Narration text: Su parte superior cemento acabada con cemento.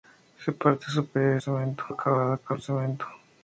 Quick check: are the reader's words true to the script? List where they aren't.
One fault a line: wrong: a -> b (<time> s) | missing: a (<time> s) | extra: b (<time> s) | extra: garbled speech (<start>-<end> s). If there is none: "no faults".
no faults